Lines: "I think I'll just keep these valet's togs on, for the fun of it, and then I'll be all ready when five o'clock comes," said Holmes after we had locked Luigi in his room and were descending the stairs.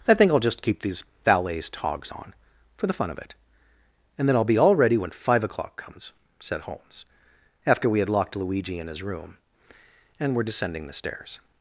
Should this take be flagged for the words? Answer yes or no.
no